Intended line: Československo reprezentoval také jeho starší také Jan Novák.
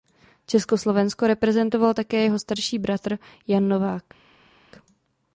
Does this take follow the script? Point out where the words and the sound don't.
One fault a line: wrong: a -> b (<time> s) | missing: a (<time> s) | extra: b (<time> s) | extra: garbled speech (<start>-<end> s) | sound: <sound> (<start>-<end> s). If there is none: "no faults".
wrong: také -> bratr (2.8 s)